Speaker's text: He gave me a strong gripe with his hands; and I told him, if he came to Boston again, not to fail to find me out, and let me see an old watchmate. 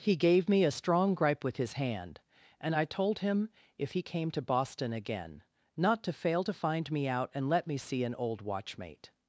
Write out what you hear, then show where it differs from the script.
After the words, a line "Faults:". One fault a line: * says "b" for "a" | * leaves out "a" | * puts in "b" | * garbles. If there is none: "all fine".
He gave me a strong gripe with his hand; and I told him, if he came to Boston again, not to fail to find me out, and let me see an old watchmate.
Faults:
* says "hand" for "hands"